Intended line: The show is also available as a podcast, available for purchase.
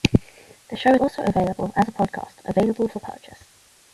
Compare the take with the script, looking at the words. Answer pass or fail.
fail